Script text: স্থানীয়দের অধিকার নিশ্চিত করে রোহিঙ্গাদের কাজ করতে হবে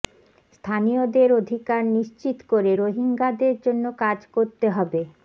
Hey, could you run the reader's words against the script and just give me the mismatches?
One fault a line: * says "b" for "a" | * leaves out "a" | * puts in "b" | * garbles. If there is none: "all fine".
* puts in "জন্য"